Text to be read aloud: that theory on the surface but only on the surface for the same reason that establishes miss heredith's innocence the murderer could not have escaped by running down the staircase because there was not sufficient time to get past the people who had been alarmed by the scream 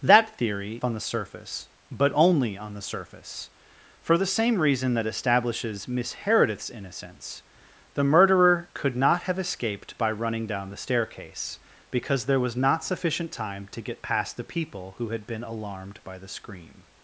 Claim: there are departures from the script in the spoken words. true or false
false